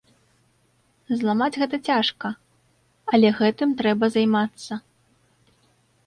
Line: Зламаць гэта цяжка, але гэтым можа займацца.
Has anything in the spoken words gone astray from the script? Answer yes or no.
yes